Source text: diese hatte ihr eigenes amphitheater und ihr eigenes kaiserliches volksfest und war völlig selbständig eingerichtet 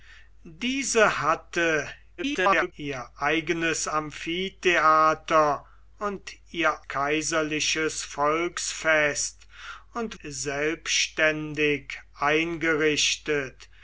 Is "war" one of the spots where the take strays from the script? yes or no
yes